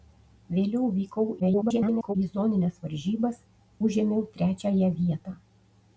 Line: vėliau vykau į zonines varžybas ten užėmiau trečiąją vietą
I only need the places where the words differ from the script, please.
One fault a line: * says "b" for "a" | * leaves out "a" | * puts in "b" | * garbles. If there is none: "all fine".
* garbles
* leaves out "ten"